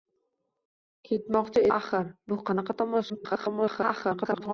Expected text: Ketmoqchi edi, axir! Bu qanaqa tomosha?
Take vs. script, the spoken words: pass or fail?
fail